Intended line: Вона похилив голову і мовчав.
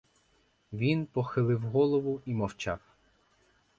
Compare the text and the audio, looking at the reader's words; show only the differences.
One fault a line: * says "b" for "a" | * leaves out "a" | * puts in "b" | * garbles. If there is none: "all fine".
* says "Він" for "Вона"